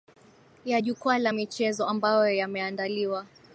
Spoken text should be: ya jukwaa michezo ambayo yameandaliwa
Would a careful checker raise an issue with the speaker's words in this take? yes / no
yes